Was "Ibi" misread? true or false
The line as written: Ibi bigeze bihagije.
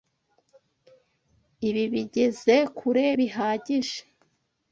false